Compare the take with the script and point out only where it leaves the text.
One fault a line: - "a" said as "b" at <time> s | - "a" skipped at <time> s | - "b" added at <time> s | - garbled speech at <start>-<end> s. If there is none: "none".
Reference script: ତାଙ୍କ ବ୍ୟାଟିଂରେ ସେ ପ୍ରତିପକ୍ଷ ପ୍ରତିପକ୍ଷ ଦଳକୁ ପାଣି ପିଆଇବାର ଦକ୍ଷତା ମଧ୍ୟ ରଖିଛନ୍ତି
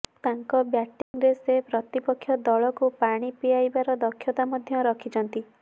- "ପ୍ରତିପକ୍ଷ" skipped at 2.4 s